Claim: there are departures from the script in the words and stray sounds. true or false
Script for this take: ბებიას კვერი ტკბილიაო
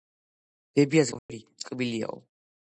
true